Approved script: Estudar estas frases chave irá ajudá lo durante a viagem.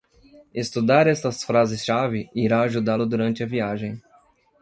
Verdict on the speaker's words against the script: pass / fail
pass